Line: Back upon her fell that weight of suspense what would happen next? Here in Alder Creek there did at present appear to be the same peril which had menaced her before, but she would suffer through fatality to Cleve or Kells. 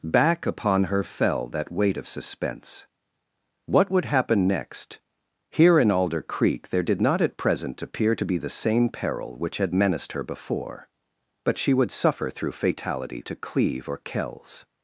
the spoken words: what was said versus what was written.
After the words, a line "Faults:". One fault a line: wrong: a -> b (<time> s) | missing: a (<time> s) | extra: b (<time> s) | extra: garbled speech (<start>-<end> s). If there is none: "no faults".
Back upon her fell that weight of suspense what would happen next? Here in Alder Creek there did not at present appear to be the same peril which had menaced her before, but she would suffer through fatality to Cleve or Kells.
Faults:
extra: not (7.0 s)